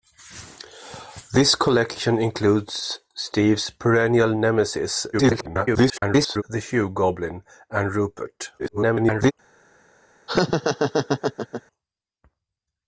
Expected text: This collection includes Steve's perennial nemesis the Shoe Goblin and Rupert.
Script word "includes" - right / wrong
right